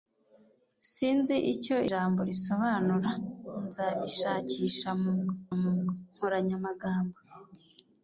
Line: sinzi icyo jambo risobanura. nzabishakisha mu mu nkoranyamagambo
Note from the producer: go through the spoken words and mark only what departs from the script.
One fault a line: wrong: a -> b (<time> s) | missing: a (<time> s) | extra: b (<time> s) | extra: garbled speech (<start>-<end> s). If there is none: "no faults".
no faults